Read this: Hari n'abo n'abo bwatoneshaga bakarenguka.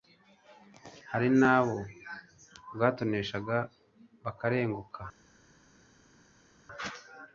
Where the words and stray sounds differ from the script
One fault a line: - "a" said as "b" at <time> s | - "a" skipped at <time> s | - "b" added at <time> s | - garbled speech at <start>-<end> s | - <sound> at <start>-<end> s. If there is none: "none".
- "n'abo" skipped at 1.8 s